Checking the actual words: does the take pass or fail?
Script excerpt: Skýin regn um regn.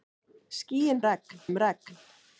pass